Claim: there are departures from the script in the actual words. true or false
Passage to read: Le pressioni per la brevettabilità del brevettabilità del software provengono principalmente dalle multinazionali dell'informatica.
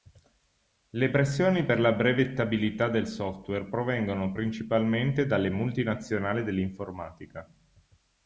true